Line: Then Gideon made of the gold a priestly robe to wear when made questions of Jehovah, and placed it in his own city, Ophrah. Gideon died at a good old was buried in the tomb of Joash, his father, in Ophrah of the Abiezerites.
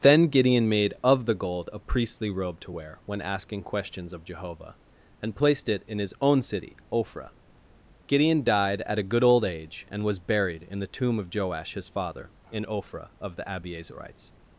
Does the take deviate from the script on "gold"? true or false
false